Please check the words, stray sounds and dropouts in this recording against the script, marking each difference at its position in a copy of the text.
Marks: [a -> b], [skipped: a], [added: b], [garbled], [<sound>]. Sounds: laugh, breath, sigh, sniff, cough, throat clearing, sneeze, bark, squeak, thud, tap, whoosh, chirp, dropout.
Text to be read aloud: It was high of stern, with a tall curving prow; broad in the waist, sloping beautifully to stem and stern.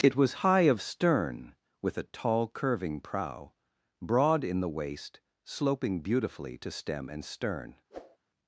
It was high of stern, with a tall curving prow; broad in the waist, sloping beautifully to stem and stern. [whoosh]